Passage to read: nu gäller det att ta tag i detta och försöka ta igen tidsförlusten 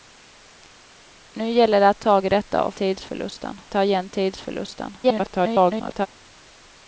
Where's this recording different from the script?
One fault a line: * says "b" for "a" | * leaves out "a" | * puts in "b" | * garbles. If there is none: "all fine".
* leaves out "ta"
* says "tidsförlusten" for "försöka"
* garbles